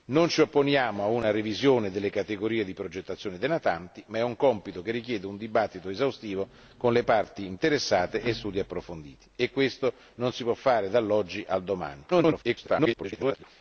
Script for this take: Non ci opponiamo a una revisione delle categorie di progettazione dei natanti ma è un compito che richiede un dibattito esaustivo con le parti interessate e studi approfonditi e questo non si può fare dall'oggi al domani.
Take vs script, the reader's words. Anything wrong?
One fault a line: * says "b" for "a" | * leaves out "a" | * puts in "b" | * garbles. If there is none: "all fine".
* garbles